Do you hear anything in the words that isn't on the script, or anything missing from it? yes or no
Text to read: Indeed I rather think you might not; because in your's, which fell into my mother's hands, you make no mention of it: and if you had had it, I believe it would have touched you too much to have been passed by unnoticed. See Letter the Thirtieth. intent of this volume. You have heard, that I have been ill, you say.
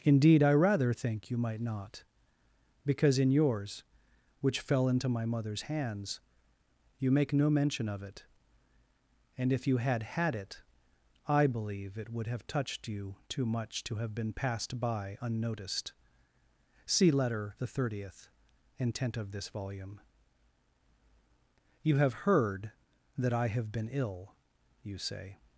no